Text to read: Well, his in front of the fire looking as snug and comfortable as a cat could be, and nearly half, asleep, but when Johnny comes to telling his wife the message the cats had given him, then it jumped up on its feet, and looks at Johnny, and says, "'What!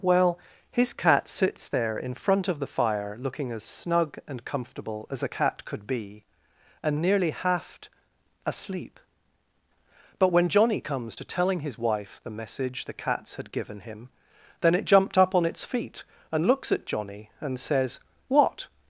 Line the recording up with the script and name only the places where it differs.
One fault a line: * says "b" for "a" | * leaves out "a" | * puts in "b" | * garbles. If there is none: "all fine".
* puts in "cat sits there"